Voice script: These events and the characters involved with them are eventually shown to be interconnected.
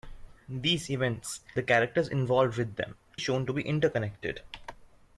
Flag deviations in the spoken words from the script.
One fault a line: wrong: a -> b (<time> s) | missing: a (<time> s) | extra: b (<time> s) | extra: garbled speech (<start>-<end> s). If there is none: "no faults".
missing: and (1.4 s)
missing: are eventually (3.0 s)